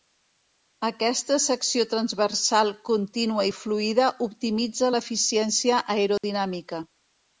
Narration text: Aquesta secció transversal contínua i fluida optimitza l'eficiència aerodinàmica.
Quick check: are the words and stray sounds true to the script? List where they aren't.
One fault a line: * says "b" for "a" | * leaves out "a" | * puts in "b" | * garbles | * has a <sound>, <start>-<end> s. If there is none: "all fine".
* has a dropout, 6.2-6.2 s